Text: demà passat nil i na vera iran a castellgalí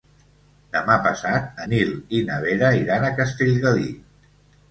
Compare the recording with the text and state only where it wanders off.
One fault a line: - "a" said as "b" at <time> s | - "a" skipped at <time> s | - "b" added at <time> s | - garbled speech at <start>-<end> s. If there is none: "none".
none